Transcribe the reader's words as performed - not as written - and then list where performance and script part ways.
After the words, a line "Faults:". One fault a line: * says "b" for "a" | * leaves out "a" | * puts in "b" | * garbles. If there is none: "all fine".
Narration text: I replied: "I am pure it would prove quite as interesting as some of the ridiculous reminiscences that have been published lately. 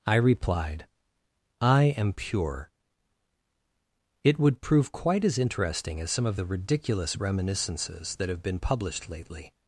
I replied: "I am pure it would prove quite as interesting as some of the ridiculous reminiscences that have been published lately.
Faults:
all fine